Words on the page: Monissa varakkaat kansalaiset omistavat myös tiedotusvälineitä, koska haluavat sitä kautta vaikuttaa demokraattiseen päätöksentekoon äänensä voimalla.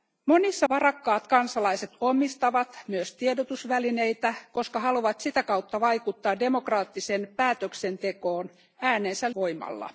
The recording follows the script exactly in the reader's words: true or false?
true